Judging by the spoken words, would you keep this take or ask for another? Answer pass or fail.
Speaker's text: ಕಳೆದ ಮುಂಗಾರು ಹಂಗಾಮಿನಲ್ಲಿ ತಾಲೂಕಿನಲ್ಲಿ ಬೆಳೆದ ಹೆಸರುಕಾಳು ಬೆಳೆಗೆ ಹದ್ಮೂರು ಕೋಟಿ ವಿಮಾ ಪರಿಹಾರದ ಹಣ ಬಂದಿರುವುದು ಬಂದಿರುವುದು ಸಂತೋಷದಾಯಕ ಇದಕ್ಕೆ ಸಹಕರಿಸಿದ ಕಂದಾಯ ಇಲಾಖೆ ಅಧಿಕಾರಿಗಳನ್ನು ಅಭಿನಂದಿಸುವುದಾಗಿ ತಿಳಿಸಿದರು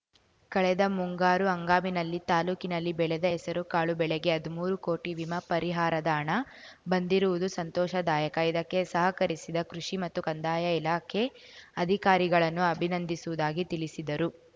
fail